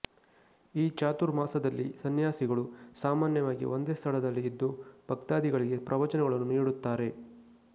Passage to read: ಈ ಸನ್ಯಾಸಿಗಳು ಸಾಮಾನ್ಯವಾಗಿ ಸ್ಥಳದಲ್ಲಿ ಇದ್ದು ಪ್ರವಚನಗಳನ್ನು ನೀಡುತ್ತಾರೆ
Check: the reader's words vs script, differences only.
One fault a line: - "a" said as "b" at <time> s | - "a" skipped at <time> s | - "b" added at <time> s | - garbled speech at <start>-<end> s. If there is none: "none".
- "ಚಾತುರ್ಮಾಸದಲ್ಲಿ" added at 0.9 s
- "ಒಂದೇ" added at 3.7 s
- "ಭಕ್ತಾದಿಗಳಿಗೆ" added at 5.1 s